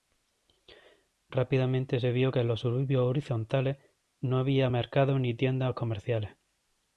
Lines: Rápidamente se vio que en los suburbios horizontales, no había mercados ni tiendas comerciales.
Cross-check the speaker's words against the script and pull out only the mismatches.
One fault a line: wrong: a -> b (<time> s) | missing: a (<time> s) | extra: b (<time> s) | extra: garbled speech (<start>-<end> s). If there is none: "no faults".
no faults